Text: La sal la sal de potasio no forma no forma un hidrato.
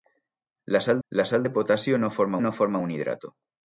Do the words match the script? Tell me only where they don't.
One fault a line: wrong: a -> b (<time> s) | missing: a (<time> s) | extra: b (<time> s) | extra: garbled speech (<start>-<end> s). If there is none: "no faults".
no faults